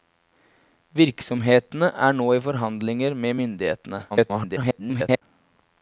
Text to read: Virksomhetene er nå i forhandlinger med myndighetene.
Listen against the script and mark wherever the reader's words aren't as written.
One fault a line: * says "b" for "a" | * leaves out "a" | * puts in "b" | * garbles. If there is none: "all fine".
* garbles